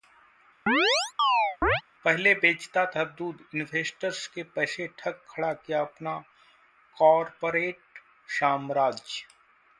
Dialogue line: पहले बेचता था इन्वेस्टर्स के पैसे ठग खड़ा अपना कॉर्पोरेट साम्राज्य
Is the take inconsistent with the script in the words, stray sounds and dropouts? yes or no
yes